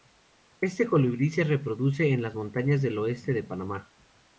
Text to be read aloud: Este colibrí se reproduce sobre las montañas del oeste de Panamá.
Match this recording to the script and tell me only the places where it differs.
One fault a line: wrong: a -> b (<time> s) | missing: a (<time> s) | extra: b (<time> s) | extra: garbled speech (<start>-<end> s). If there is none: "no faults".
wrong: sobre -> en (2.1 s)